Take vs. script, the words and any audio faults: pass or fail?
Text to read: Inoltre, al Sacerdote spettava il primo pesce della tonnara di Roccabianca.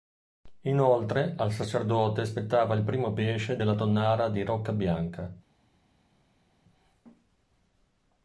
pass